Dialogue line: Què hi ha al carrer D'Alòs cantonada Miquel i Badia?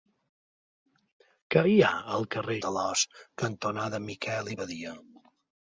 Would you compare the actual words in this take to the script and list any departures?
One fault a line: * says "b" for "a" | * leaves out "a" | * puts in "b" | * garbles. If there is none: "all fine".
all fine